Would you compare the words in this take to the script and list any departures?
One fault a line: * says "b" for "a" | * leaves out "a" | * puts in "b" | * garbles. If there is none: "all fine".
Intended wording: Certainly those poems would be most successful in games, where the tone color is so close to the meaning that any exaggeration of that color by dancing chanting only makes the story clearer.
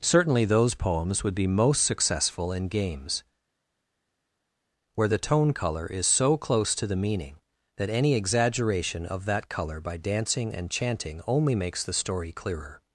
* puts in "and"